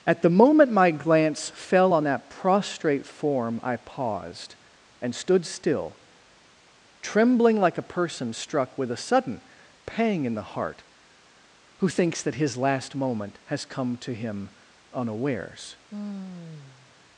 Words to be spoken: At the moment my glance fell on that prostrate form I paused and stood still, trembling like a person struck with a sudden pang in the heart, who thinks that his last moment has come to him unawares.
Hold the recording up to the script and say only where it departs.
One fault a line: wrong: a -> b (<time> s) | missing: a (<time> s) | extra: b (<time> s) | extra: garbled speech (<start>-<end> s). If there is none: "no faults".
no faults